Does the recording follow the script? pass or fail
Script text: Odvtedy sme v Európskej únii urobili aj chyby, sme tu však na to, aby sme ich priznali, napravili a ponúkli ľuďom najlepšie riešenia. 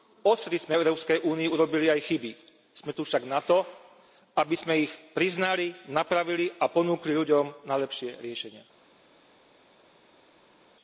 pass